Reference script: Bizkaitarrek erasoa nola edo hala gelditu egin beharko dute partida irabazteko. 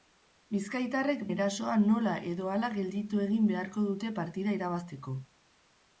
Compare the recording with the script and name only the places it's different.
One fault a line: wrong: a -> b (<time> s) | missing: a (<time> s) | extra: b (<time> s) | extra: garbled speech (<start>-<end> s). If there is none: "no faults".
no faults